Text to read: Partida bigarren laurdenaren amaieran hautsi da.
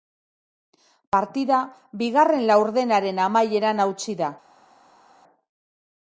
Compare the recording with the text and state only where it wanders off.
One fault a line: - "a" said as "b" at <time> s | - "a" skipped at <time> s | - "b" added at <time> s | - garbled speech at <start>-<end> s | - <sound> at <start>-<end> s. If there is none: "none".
none